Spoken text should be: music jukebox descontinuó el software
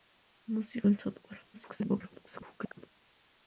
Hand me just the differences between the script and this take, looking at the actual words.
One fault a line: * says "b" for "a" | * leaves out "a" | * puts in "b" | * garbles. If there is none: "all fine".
* leaves out "jukebox descontinuó"
* garbles